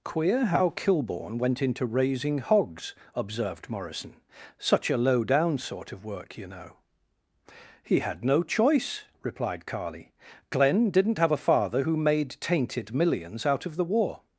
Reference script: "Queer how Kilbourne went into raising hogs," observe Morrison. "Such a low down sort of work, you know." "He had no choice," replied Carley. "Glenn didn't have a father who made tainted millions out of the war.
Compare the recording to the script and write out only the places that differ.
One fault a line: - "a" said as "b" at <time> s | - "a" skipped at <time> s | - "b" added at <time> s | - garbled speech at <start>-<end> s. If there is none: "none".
- "observe" said as "observed" at 3.1 s